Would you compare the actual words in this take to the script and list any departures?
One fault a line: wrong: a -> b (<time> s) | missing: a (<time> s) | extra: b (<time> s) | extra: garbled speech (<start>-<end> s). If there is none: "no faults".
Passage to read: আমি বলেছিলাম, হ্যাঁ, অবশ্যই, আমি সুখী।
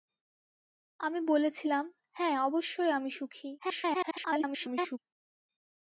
extra: garbled speech (3.6-5.0 s)